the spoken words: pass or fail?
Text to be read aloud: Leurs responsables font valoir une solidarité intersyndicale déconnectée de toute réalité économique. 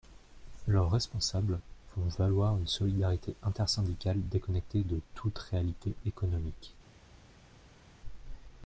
pass